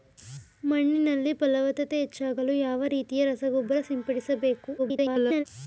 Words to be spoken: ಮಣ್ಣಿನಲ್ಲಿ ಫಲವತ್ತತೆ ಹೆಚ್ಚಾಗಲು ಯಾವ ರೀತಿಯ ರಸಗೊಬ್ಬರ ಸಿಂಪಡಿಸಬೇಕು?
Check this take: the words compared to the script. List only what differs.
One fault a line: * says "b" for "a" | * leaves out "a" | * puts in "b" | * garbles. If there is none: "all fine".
* garbles